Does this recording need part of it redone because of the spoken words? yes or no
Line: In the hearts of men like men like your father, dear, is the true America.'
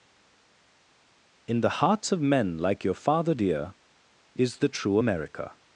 yes